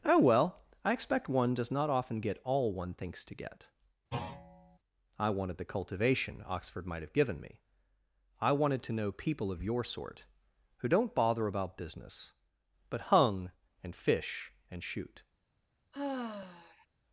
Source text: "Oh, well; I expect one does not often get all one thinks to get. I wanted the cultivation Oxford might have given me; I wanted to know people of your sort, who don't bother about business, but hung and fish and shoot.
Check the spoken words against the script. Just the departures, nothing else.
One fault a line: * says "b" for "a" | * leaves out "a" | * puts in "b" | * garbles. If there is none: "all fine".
all fine